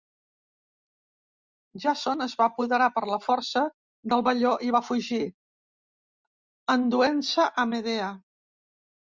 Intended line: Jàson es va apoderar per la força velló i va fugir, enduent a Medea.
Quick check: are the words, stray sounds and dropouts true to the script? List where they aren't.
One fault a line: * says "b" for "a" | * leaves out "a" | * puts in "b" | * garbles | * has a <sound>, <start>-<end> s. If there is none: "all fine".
* puts in "del"
* puts in "se"